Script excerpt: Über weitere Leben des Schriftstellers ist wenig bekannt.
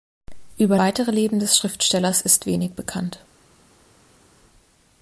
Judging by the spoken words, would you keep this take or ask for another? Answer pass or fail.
pass